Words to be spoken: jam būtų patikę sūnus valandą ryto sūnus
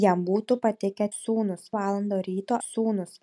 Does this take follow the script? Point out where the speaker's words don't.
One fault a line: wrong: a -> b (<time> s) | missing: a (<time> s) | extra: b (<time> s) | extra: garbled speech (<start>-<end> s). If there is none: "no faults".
no faults